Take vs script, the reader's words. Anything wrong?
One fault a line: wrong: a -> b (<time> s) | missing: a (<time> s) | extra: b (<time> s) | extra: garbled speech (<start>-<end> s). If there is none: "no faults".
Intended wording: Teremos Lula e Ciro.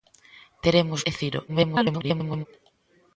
missing: Lula (1.0 s)
extra: garbled speech (1.5-2.5 s)